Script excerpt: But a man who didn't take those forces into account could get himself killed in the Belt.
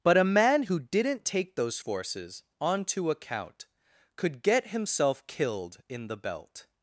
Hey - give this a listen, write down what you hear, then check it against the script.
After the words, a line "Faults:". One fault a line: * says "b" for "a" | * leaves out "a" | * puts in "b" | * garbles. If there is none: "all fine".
But a man who didn't take those forces onto account could get himself killed in the Belt.
Faults:
* says "onto" for "into"